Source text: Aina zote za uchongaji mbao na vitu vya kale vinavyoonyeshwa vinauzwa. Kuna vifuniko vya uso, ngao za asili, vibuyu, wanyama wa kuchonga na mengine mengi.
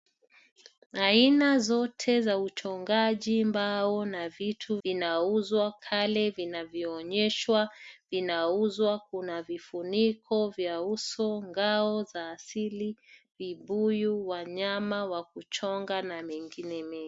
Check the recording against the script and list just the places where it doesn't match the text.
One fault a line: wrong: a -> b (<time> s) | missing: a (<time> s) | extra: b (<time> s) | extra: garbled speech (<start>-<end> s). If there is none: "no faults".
wrong: vya -> vinauzwa (4.8 s)